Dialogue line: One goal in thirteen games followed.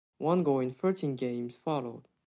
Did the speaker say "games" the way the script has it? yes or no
yes